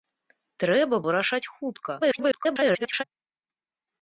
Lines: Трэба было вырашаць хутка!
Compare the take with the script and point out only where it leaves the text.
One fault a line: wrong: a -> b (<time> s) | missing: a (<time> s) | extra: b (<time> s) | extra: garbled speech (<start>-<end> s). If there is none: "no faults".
missing: было (0.9 s)
extra: garbled speech (2.0-3.0 s)